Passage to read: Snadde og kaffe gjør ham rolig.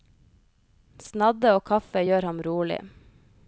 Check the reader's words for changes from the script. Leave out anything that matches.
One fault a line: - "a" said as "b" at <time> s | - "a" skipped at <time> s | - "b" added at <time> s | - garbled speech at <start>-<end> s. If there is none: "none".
none